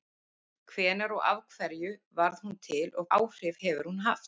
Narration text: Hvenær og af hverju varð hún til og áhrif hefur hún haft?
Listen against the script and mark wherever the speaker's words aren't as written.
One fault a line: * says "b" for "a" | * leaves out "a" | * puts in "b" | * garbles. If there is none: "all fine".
all fine